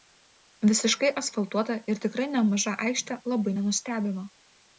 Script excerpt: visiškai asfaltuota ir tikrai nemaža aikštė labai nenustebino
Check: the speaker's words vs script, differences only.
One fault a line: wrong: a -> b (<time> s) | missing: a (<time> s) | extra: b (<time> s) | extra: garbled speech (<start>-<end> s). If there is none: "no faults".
no faults